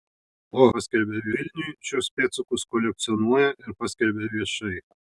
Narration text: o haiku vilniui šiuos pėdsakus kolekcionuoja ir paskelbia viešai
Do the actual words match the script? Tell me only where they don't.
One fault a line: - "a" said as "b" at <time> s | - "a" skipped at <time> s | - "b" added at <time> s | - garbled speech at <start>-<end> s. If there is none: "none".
- "haiku" said as "paskelbia" at 0.8 s